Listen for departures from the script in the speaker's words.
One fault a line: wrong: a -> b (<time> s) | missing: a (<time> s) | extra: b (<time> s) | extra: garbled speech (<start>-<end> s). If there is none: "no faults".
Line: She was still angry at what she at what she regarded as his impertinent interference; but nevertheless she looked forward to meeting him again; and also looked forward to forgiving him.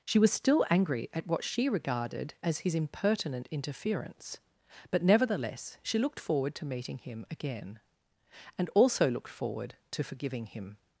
missing: at what she (1.7 s)